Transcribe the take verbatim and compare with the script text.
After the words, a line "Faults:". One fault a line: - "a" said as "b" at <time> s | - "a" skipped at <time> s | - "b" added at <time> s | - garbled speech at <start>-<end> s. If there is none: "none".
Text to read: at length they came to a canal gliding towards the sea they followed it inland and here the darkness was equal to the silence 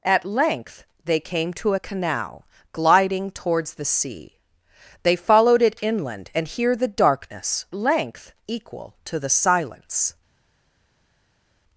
at length they came to a canal gliding towards the sea they followed it inland and here the darkness length equal to the silence
Faults:
- "was" said as "length" at 7.7 s